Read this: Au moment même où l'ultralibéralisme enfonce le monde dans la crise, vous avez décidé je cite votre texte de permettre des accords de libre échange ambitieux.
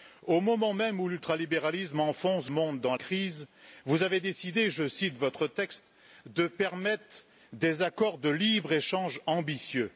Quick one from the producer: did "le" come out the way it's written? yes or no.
no